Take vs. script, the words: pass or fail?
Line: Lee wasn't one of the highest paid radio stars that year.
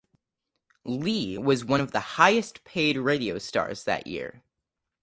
fail